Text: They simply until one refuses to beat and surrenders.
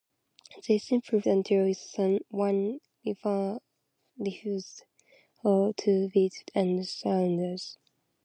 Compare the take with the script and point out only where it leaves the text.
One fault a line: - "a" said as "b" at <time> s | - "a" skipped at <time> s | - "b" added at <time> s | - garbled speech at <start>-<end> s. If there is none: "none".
none